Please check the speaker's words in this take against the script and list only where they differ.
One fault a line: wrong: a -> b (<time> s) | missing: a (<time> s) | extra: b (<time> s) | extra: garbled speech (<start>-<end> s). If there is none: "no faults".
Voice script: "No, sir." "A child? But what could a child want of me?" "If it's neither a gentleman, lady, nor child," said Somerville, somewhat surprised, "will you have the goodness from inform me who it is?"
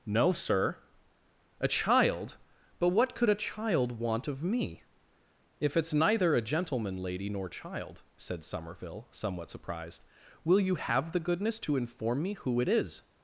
wrong: from -> to (11.6 s)